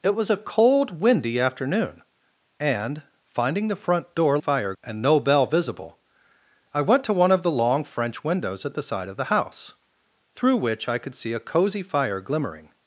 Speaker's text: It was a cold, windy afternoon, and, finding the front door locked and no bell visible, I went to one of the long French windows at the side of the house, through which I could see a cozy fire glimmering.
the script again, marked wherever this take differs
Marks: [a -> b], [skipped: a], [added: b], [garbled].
It was a cold, windy afternoon, and, finding the front door [locked -> fire] and no bell visible, I went to one of the long French windows at the side of the house, through which I could see a cozy fire glimmering.